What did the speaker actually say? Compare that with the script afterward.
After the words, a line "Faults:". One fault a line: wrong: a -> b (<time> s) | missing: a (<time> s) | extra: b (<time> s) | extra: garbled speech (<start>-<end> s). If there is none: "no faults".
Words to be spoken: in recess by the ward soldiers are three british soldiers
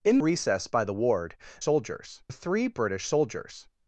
in recess by the ward soldiers are three british soldiers
Faults:
no faults